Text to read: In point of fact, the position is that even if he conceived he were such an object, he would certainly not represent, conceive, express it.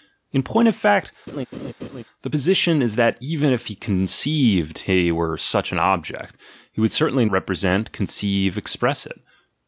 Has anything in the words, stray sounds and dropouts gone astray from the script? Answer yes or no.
yes